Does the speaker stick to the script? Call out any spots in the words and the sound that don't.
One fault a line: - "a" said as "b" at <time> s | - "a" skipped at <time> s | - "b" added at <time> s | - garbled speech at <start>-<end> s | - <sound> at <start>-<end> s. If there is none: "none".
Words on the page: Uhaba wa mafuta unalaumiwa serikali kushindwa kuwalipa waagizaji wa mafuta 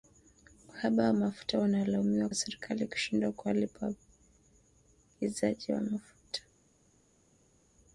none